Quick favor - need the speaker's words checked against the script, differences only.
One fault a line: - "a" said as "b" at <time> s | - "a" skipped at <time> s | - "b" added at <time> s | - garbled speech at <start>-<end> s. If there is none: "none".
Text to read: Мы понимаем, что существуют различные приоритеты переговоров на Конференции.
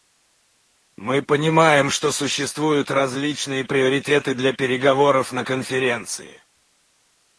- "для" added at 4.3 s